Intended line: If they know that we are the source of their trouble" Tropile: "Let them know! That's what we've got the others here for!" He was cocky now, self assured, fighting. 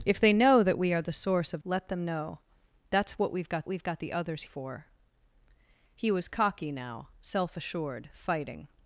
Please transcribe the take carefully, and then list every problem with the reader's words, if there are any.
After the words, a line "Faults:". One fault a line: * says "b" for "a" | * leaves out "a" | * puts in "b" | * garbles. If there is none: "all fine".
If they know that we are the source of: "Let them know! That's what we've got we've got the others for!" He was cocky now, self assured, fighting.
Faults:
* leaves out "their trouble Tropile"
* puts in "we've got"
* leaves out "here"